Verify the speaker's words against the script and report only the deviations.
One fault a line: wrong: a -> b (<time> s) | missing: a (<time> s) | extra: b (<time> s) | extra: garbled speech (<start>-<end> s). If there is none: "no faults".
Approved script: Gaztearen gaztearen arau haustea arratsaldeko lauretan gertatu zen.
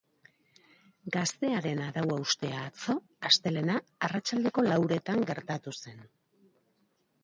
missing: gaztearen (1.8 s)
extra: atzo astelehena (2.7 s)